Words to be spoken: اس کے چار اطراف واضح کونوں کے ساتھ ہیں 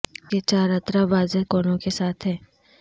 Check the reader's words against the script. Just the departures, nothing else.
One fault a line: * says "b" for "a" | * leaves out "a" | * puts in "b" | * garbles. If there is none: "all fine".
all fine